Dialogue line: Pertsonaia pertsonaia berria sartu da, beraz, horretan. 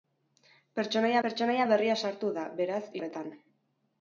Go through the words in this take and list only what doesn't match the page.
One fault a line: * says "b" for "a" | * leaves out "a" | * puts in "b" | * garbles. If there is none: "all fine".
all fine